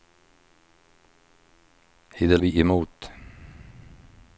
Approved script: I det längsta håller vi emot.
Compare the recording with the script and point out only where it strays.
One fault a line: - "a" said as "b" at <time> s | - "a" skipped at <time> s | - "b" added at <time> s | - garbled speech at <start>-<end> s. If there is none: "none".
- "längsta håller" skipped at 2.4 s